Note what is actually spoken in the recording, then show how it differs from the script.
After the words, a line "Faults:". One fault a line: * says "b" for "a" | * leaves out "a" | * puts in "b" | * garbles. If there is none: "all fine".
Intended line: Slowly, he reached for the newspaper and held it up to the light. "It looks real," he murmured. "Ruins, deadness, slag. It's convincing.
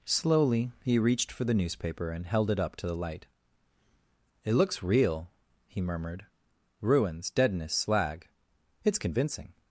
Slowly, he reached for the newspaper and held it up to the light. "It looks real," he murmured. "Ruins, deadness, slag. It's convincing.
Faults:
all fine